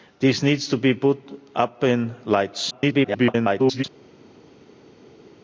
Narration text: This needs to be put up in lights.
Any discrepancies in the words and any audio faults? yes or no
yes